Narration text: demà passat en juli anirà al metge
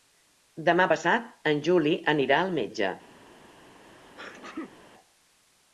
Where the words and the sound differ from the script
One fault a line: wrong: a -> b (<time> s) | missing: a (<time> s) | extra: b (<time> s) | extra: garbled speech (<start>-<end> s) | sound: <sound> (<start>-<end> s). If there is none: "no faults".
sound: sneeze (3.8-4.8 s)